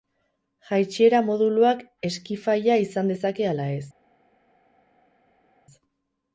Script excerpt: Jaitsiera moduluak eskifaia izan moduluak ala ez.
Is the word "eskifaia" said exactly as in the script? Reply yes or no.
yes